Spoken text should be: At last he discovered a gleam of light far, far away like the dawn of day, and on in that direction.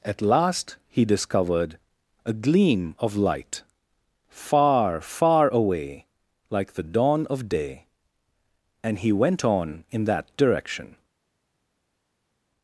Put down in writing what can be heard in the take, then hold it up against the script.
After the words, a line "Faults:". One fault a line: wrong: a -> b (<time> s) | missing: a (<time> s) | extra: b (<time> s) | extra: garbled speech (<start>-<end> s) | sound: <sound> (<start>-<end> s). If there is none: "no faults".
At last he discovered a gleam of light far, far away like the dawn of day, and he went on in that direction.
Faults:
extra: he went (9.0 s)